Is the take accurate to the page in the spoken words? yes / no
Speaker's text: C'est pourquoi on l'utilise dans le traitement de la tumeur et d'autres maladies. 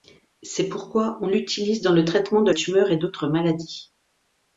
no